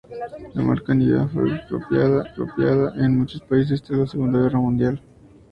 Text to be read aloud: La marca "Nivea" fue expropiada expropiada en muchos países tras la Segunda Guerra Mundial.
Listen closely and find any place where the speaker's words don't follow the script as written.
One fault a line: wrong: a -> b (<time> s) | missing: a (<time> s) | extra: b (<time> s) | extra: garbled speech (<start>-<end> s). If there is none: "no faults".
no faults